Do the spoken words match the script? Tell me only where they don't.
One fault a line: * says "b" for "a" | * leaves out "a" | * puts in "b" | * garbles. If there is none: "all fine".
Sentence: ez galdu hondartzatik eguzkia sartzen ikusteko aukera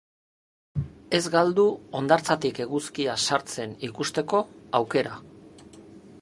all fine